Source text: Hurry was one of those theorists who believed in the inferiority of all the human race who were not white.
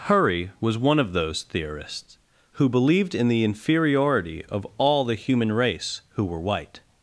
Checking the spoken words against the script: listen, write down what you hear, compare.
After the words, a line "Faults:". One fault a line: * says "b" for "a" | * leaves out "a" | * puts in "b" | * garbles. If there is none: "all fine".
Hurry was one of those theorists who believed in the inferiority of all the human race who were white.
Faults:
* leaves out "not"